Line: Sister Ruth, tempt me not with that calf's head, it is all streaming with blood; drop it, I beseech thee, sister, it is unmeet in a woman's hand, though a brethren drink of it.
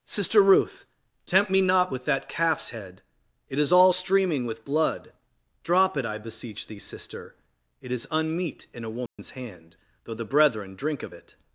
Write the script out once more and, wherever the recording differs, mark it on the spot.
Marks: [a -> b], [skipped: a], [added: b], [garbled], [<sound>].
Sister Ruth, tempt me not with that calf's head, it is all streaming with blood; drop it, I beseech thee, sister, it is unmeet in a woman's [dropout] hand, though [a -> the] brethren drink of it.